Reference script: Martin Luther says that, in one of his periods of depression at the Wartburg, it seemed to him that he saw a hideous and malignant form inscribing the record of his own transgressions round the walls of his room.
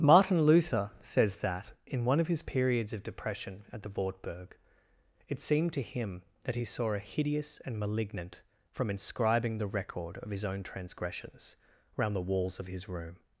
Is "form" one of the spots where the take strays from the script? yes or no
yes